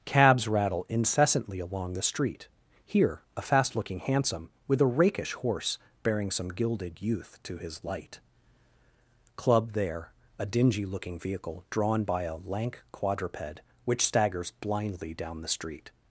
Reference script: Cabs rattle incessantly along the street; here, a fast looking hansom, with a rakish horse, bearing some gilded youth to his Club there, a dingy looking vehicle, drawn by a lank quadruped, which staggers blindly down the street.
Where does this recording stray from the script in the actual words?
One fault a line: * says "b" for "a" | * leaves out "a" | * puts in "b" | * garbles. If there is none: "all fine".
* puts in "light"